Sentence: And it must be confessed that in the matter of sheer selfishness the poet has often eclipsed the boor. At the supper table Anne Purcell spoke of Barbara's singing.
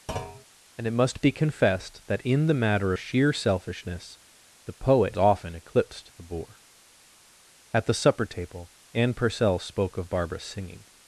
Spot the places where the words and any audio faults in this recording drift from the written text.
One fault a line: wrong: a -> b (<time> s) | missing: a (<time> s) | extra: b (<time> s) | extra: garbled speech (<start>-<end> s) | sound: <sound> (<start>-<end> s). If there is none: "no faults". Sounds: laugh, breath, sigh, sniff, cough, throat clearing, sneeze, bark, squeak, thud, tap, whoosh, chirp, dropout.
sound: thud (0.1-0.5 s)
missing: of (2.9 s)
missing: has (5.2 s)